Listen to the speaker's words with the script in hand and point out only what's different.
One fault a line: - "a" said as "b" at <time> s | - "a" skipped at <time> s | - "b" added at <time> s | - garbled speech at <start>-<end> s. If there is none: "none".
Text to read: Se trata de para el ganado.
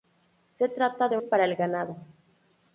none